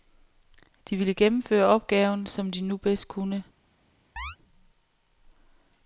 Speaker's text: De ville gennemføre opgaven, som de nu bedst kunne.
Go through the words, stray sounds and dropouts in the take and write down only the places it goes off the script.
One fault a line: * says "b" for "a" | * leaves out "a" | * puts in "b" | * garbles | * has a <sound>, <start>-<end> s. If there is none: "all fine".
* has a chirp, 4.2-4.4 s